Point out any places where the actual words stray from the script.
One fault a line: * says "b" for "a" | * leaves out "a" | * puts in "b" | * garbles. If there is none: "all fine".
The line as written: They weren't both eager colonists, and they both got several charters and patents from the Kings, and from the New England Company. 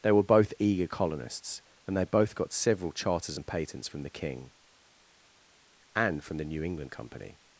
* says "were" for "weren't"
* says "King" for "Kings"